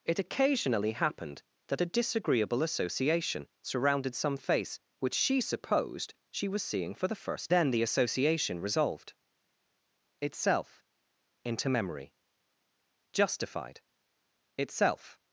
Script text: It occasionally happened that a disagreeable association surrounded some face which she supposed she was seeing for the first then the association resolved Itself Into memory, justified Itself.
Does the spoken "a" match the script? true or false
true